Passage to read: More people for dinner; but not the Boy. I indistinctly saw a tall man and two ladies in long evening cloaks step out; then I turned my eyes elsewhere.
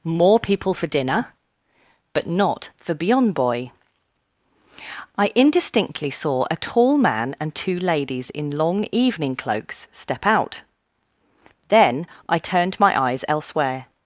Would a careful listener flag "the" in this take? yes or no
yes